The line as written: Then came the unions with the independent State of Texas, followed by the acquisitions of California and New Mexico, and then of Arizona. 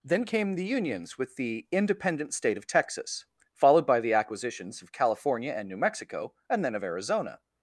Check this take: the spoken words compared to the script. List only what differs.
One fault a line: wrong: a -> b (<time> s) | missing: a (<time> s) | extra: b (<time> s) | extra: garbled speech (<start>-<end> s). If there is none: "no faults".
no faults